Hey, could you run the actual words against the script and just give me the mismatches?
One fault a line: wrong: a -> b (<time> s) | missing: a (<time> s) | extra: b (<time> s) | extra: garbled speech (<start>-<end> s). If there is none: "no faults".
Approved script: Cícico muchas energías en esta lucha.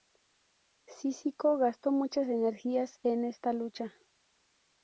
extra: gastó (1.6 s)